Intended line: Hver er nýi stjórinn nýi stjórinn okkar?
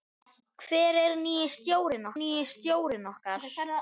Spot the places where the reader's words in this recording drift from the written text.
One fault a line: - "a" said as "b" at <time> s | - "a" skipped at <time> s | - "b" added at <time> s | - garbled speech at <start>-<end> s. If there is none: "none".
none